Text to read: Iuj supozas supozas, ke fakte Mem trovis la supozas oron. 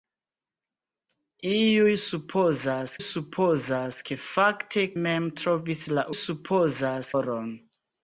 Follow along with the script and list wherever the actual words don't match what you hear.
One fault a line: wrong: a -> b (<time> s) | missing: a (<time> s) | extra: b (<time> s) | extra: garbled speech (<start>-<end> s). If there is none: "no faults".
no faults